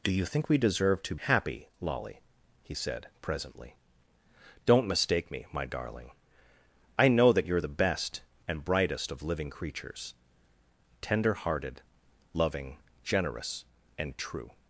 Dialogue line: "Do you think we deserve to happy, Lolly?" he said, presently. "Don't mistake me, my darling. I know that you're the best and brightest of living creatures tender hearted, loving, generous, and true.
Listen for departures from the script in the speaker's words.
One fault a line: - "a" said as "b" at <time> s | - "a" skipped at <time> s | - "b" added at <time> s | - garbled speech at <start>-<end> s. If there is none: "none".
none